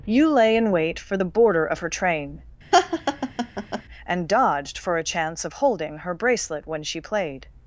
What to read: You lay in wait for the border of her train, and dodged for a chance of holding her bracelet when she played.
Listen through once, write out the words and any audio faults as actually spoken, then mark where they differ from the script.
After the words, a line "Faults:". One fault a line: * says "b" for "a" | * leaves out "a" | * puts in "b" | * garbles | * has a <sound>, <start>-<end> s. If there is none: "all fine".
You lay in wait for the border of her train, and dodged for a chance of holding her bracelet when she played.
Faults:
* has a laugh, 2.7-3.8 s